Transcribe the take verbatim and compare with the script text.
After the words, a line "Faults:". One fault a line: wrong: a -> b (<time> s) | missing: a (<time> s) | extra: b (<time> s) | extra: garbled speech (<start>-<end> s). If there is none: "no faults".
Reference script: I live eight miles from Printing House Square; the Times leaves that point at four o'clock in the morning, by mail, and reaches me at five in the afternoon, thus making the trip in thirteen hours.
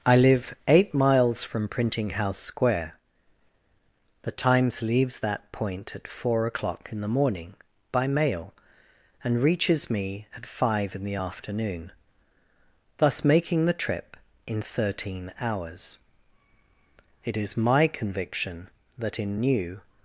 I live eight miles from Printing House Square; the Times leaves that point at four o'clock in the morning, by mail, and reaches me at five in the afternoon, thus making the trip in thirteen hours. It is my conviction that in New
Faults:
extra: It is my conviction that in New (17.2 s)